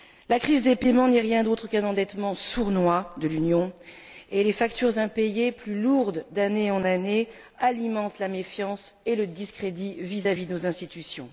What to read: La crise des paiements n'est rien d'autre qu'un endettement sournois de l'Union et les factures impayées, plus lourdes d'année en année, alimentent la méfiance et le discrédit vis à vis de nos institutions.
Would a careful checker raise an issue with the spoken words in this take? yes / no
no